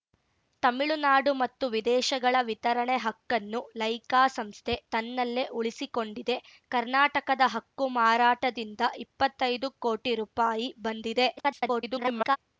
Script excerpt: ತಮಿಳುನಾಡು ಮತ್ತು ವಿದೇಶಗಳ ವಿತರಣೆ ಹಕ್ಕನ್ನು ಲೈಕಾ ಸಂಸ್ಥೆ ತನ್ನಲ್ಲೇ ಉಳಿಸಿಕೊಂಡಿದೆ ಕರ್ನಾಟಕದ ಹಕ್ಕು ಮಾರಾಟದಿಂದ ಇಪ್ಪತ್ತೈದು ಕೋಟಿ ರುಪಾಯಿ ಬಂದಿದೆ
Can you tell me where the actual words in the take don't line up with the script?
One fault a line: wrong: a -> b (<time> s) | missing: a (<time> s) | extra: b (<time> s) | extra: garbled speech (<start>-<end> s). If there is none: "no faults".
extra: garbled speech (11.4-12.4 s)